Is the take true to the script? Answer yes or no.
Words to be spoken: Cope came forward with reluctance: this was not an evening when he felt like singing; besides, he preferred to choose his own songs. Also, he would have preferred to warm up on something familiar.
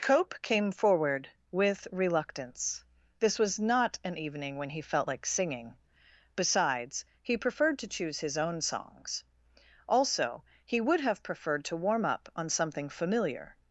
yes